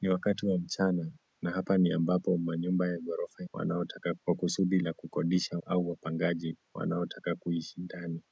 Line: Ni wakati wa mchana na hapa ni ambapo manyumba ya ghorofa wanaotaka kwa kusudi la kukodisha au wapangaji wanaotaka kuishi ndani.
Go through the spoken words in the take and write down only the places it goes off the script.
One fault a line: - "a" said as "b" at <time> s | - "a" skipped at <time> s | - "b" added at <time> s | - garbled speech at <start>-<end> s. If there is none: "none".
none